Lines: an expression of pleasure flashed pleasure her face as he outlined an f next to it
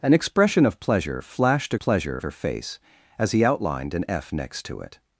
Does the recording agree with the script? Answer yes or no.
yes